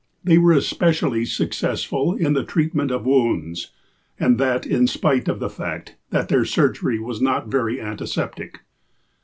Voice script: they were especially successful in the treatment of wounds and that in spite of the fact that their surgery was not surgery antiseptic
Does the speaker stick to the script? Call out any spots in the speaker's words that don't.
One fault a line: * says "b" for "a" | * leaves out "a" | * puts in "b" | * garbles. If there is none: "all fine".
* says "very" for "surgery"